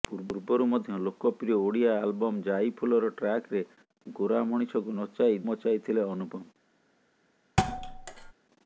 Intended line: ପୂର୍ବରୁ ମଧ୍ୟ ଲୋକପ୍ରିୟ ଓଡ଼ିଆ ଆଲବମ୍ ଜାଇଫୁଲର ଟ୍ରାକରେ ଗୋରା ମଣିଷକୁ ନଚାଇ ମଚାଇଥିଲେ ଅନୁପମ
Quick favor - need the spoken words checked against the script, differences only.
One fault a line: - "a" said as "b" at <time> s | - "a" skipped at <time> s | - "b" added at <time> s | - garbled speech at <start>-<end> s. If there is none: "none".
none